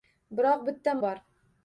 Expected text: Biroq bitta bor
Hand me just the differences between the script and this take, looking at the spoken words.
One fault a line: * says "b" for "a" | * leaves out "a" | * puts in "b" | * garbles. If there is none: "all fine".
all fine